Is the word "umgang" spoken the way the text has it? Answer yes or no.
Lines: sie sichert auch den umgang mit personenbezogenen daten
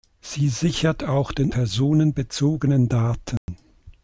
no